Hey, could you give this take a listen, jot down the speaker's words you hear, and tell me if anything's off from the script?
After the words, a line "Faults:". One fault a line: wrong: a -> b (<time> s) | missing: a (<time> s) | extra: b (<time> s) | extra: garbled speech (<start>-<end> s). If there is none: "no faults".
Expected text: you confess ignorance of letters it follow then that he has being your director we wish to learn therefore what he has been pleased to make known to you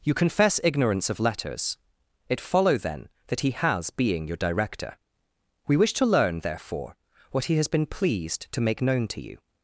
you confess ignorance of letters it follow then that he has being your director we wish to learn therefore what he has been pleased to make known to you
Faults:
no faults